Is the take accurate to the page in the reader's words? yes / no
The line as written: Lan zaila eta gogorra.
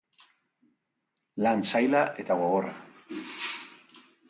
yes